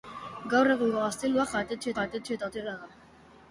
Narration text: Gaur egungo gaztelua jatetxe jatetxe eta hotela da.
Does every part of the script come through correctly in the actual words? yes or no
yes